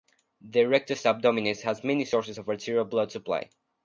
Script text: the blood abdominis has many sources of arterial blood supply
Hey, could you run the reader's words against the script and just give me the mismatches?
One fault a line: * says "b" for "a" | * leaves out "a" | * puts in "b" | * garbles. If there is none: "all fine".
* says "rectus" for "blood"